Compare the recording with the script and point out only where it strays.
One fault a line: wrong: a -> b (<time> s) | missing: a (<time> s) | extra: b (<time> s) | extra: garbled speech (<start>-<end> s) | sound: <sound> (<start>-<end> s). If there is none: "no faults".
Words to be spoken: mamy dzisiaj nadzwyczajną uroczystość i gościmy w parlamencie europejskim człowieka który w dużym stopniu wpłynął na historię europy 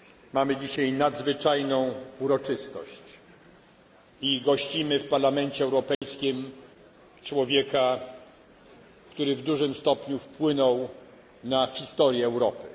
sound: dropout (5.9-6.0 s)